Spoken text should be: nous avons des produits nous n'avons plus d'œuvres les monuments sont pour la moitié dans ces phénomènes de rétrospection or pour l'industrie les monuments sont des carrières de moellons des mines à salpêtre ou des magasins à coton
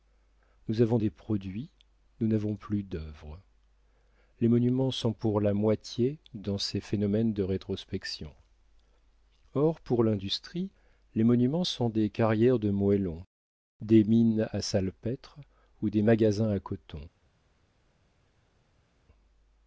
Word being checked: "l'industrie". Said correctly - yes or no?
yes